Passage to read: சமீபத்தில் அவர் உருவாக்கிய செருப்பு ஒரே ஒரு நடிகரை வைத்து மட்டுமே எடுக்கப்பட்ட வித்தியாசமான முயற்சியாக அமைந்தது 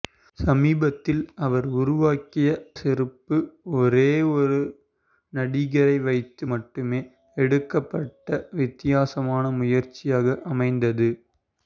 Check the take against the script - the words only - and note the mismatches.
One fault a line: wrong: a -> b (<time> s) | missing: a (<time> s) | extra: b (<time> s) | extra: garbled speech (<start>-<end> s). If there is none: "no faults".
no faults